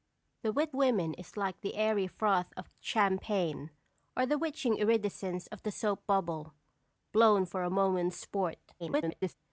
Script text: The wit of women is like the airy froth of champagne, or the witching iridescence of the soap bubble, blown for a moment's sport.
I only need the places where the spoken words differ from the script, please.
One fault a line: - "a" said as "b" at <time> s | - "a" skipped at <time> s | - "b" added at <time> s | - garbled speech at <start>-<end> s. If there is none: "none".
- "of" skipped at 0.8 s
- garbled speech at 8.8-9.3 s